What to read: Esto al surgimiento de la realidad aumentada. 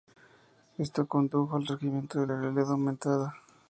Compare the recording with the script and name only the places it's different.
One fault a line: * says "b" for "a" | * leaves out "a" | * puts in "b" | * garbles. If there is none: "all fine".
* puts in "condujo"